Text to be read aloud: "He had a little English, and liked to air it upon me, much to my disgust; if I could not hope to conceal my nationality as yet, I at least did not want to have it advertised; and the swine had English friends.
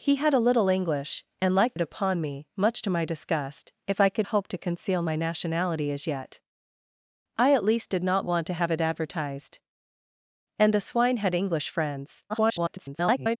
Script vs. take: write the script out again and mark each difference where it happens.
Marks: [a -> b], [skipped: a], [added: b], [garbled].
"He had a little English, and liked [skipped: to air] it upon me, much to my disgust; if I could [skipped: not] hope to conceal my nationality as yet, I at least did not want to have it advertised; and the swine had English friends. [garbled]